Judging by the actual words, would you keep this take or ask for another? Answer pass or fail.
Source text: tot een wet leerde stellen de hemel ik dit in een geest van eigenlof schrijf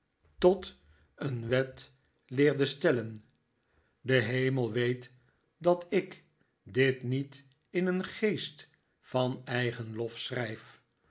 fail